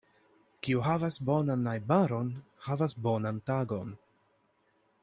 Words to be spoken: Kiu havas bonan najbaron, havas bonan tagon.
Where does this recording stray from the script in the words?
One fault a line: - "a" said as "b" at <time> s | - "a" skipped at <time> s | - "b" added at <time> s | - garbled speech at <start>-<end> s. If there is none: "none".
none